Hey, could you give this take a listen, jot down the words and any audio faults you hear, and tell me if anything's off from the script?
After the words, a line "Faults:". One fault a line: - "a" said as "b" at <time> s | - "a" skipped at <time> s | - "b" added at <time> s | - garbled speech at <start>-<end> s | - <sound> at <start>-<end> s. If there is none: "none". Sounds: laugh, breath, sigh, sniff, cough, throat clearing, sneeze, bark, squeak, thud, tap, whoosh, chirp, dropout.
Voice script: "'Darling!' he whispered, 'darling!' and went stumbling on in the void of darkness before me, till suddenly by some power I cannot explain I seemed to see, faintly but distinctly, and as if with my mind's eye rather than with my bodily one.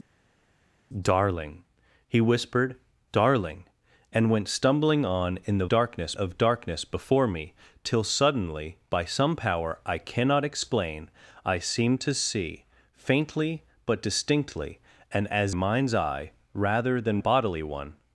"'Darling!' he whispered, 'darling!' and went stumbling on in the darkness of darkness before me, till suddenly by some power I cannot explain I seemed to see, faintly but distinctly, and as mind's eye rather than bodily one.
Faults:
- "void" said as "darkness" at 5.7 s
- "if with my" skipped at 15.6 s
- "with my" skipped at 17.2 s